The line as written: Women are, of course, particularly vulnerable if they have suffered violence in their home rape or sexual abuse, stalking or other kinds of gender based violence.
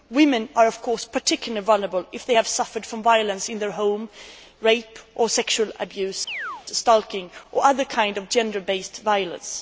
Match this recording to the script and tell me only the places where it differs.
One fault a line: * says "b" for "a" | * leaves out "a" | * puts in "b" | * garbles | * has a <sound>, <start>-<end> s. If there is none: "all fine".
* has a chirp, 6.3-6.7 s